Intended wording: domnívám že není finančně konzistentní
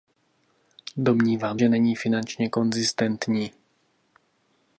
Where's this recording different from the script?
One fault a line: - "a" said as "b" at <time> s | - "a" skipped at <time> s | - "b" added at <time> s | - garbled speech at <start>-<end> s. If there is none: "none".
none